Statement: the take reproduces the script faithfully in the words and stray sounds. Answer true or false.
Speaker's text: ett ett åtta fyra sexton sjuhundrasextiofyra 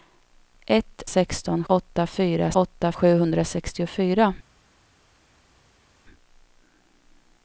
false